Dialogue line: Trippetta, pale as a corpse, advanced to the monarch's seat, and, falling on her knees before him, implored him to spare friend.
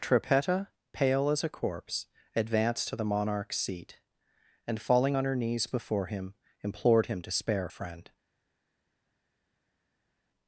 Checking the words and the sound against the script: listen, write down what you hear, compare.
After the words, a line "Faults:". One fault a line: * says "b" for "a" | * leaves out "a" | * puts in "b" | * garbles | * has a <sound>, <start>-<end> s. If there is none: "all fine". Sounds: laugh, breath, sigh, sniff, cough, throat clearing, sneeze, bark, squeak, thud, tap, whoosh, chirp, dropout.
Trippetta, pale as a corpse, advanced to the monarch's seat, and, falling on her knees before him, implored him to spare friend.
Faults:
all fine